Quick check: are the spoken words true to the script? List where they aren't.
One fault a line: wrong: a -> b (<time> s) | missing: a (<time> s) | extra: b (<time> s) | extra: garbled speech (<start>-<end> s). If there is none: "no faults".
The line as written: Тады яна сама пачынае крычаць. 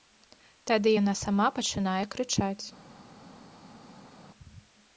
no faults